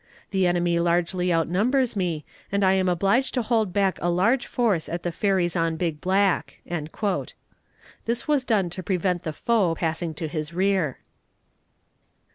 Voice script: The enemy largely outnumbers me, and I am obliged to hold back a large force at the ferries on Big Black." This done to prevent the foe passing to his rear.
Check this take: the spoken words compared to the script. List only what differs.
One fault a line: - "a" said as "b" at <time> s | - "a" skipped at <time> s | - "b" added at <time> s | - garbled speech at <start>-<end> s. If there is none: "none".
- "was" added at 8.3 s